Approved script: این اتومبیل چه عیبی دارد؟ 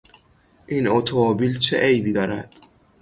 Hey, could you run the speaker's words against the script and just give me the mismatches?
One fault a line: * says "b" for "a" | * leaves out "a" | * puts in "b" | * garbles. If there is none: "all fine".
all fine